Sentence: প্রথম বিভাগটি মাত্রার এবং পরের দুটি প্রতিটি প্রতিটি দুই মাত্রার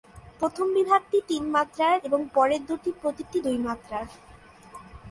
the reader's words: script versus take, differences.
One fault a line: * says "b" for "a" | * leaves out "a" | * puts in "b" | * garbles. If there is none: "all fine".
* puts in "তিন"
* leaves out "প্রতিটি"